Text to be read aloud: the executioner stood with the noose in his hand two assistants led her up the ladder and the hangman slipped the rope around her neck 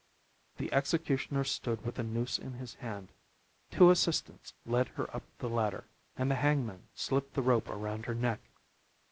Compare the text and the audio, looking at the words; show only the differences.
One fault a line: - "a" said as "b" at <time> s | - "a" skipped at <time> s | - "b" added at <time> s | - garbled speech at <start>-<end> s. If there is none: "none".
none